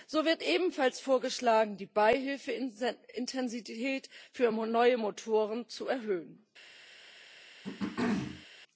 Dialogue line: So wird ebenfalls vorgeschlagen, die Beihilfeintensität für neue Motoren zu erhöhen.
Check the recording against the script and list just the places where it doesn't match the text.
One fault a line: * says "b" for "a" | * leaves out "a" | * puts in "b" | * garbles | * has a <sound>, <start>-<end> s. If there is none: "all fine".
* has a throat clearing, 7.6-8.5 s